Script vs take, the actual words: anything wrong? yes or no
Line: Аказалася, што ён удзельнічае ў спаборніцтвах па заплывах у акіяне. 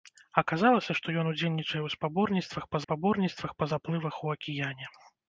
yes